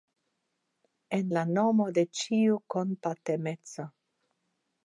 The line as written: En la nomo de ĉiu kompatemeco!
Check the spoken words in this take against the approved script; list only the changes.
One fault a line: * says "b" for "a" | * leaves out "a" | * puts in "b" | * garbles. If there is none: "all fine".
all fine